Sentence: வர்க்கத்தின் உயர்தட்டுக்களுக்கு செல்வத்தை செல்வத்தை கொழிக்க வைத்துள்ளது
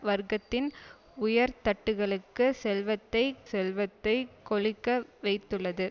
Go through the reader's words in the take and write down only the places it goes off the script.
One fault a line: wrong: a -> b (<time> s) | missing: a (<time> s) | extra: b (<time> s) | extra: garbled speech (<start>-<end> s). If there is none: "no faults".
no faults